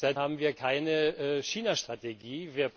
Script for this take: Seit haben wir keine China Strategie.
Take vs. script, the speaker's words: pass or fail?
pass